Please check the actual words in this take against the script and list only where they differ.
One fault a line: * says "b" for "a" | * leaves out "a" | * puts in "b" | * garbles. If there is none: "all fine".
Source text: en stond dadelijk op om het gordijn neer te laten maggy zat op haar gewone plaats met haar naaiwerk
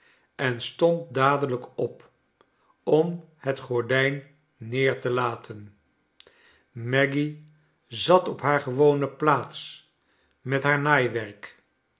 all fine